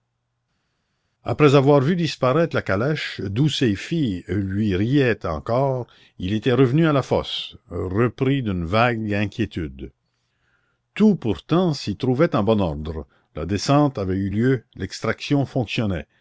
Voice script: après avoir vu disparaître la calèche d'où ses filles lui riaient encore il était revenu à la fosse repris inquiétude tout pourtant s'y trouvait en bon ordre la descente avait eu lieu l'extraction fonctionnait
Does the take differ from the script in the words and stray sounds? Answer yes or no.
yes